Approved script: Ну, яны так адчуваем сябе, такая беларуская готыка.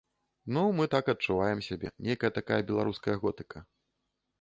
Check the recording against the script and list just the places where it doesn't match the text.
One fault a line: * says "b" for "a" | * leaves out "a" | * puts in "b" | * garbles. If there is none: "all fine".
* says "мы" for "яны"
* puts in "нейкая"